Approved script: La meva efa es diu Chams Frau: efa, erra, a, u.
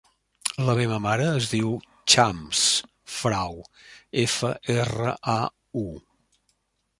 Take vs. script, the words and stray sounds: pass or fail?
fail